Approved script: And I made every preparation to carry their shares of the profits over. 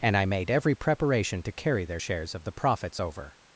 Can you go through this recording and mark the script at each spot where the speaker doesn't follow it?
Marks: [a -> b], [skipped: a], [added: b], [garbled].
And I made every preparation to carry their shares of the profits over.